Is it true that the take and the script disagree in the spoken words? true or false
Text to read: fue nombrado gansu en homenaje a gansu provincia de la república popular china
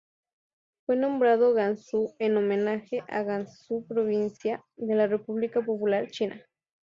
false